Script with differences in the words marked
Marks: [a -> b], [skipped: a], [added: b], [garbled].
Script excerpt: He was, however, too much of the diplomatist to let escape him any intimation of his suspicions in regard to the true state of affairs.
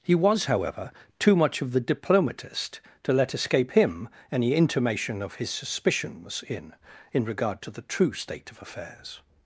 He was, however, too much of the diplomatist to let escape him any intimation of his suspicions in [added: in] regard to the true state of affairs.